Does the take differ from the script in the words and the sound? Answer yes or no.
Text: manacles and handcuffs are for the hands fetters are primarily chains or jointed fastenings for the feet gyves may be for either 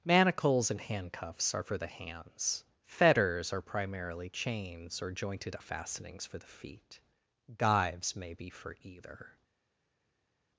no